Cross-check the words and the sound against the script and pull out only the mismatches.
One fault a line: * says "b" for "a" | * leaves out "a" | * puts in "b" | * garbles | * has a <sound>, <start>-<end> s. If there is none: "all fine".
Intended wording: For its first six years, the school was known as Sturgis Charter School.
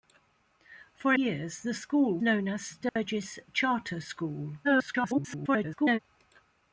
* leaves out "its first six"
* leaves out "was"
* has a dropout, 2.9-3.0 s
* garbles